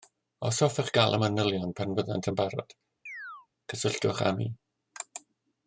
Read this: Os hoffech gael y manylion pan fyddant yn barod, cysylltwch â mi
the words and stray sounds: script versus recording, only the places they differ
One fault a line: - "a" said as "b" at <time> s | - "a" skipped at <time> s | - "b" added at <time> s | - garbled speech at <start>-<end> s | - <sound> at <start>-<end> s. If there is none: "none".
- chirp at 3.1-3.5 s